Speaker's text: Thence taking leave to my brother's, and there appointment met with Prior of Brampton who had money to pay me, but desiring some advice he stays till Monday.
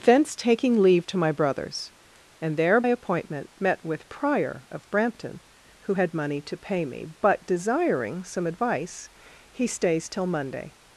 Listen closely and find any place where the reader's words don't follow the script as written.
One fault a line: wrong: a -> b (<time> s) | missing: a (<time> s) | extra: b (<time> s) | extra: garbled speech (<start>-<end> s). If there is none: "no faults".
no faults